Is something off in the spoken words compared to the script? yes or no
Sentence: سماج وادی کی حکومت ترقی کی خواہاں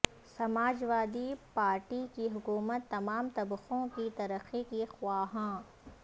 yes